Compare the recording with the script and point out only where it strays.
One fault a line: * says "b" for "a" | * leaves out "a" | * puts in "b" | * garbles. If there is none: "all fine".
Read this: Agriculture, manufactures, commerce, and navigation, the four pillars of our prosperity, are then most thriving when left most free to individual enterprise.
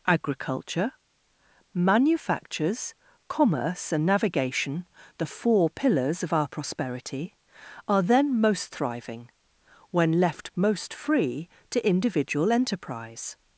all fine